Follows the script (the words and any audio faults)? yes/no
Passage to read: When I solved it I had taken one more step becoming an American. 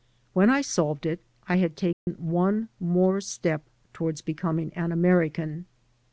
no